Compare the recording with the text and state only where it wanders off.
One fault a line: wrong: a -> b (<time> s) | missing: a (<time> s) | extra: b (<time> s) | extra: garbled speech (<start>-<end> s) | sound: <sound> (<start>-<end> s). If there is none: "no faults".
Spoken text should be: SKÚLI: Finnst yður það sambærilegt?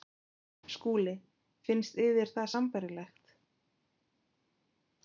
no faults